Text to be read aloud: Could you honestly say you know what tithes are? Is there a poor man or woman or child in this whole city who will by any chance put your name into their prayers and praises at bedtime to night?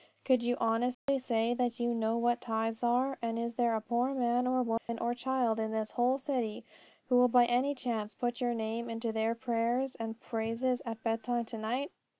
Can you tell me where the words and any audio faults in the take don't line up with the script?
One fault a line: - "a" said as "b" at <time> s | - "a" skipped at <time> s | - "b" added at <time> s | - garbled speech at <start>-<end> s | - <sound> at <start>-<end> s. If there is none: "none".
- dropout at 0.9-1.1 s
- "that" added at 1.5 s
- "And" added at 3.2 s
- dropout at 4.8-4.9 s